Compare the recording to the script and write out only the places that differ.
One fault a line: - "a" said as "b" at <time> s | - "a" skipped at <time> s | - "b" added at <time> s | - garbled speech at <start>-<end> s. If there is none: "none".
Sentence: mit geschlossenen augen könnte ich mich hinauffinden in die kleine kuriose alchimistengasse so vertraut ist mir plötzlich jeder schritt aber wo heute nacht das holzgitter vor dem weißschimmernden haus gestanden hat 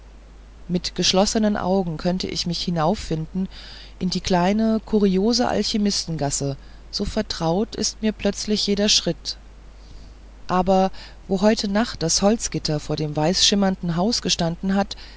none